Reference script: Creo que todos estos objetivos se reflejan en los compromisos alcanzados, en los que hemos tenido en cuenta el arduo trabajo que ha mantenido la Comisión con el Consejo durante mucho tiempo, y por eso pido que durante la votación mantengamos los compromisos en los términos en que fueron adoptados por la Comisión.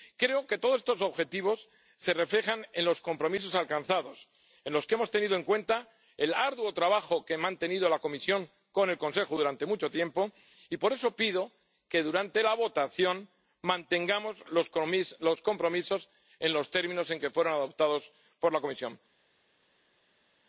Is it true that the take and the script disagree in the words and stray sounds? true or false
false